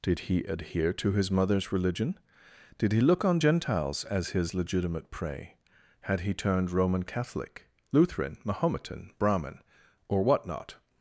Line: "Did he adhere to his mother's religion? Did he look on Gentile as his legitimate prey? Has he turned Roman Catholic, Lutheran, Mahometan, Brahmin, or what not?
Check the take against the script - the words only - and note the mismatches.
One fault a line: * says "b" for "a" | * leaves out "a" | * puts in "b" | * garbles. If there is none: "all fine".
* says "Gentiles" for "Gentile"
* says "Had" for "Has"